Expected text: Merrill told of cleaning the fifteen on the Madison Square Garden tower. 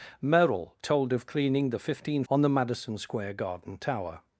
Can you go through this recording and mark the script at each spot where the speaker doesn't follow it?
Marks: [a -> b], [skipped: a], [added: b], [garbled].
Merrill told of cleaning the fifteen on the Madison Square Garden tower.